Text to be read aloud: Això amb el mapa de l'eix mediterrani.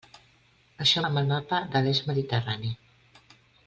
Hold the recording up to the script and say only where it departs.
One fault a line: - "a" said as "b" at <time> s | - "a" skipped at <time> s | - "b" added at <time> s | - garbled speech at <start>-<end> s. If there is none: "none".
none